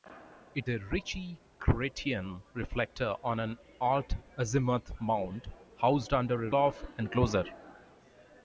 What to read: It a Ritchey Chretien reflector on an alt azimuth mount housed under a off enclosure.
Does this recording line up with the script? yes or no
yes